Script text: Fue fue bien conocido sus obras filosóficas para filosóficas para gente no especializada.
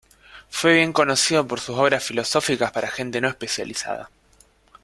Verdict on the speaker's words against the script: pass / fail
fail